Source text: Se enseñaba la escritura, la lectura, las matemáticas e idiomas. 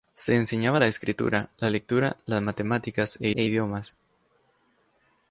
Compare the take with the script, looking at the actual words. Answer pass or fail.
fail